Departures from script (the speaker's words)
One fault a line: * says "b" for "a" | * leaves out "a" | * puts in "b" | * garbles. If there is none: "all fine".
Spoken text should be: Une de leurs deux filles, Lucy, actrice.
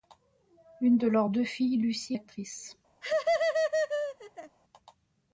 all fine